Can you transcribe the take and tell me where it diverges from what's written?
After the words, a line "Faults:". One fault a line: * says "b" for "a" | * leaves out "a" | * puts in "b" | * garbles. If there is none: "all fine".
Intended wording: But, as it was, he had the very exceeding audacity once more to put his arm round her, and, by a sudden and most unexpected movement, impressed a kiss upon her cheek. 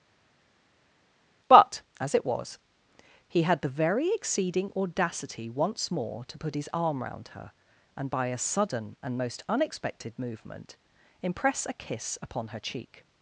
But, as it was, he had the very exceeding audacity once more to put his arm round her, and, by a sudden and most unexpected movement, impress a kiss upon her cheek.
Faults:
* says "impress" for "impressed"